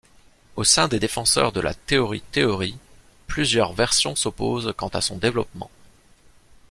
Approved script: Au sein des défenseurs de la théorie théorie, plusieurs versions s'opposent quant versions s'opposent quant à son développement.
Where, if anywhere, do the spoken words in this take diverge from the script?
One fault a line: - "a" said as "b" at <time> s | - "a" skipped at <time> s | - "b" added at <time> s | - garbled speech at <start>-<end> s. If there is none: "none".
- "versions s'opposent quant" skipped at 4.9 s